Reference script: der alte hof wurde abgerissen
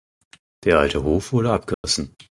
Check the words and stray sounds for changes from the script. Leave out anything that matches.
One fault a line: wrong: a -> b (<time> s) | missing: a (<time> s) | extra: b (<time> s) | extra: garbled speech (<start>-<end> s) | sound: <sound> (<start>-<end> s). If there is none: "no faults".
sound: dropout (1.7-1.8 s)